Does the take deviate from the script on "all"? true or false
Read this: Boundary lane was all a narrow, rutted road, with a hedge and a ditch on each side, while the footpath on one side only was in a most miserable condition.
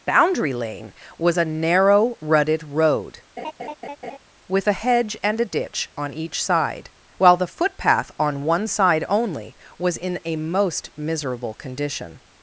true